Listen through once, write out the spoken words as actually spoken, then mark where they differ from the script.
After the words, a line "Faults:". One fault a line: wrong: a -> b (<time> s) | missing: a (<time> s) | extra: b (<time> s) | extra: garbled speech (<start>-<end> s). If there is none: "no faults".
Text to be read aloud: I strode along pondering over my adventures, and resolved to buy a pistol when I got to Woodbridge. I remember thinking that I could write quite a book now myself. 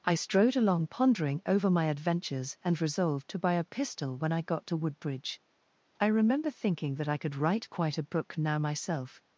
I strode along pondering over my adventures, and resolved to buy a pistol when I got to Woodbridge. I remember thinking that I could write quite a book now myself.
Faults:
no faults